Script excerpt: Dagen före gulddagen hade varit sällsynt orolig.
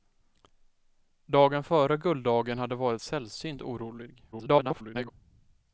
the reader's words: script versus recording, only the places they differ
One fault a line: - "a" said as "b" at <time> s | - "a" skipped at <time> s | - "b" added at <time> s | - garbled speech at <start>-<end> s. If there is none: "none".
- garbled speech at 4.3-5.1 s